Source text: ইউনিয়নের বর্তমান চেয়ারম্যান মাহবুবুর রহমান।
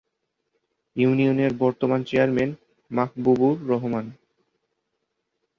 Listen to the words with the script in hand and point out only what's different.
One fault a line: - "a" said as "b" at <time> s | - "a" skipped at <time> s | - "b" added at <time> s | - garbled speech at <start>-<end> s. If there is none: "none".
none